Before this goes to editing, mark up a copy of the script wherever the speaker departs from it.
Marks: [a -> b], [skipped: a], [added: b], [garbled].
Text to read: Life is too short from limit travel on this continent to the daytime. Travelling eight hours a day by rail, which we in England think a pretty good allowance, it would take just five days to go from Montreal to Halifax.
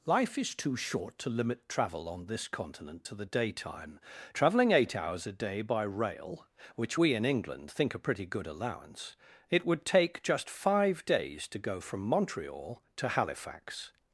Life is too short [from -> to] limit travel on this continent to the daytime. Travelling eight hours a day by rail, which we in England think a pretty good allowance, it would take just five days to go from Montreal to Halifax.